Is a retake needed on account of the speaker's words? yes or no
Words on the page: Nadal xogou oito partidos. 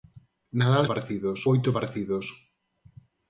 yes